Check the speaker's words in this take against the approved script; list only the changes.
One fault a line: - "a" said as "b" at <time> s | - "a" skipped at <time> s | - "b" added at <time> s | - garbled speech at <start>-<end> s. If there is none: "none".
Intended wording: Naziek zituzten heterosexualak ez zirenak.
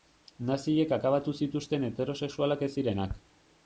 - "akabatu" added at 1.0 s